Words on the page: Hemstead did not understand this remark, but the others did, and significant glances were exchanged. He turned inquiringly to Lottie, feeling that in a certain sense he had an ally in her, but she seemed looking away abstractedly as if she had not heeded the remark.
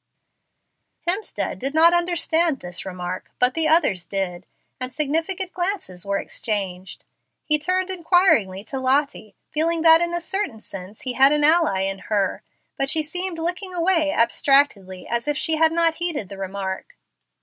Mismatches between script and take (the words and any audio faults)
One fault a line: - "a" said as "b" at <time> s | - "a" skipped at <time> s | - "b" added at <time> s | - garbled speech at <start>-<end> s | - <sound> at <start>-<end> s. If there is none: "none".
none